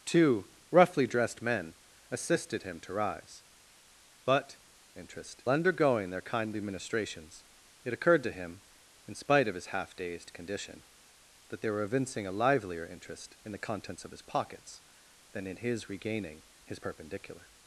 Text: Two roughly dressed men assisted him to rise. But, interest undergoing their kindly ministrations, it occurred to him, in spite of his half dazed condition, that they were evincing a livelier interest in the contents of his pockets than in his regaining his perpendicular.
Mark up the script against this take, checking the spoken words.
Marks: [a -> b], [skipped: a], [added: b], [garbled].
Two roughly dressed men assisted him to rise. But, interest undergoing their kindly ministrations, it occurred to him, in spite of his half dazed condition, that they were evincing a livelier interest in the contents of his pockets than in his regaining his perpendicular.